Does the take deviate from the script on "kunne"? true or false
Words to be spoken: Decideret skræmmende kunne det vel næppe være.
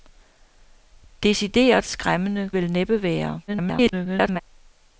true